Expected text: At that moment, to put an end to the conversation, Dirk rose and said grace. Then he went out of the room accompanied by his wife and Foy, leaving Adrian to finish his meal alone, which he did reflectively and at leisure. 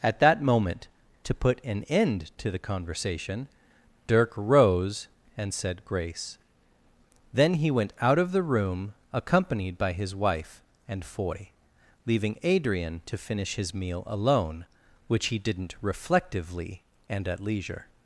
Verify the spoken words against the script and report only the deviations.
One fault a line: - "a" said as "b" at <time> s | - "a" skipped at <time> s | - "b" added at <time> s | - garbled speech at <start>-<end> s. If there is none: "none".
- "did" said as "didn't" at 15.4 s